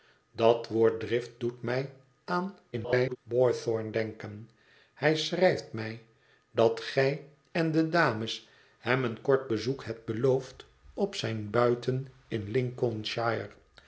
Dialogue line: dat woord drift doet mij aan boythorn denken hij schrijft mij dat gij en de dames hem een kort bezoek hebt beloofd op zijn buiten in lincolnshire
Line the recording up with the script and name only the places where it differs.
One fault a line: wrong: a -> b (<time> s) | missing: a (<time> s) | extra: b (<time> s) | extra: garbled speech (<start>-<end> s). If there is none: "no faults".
extra: garbled speech (2.7-3.2 s)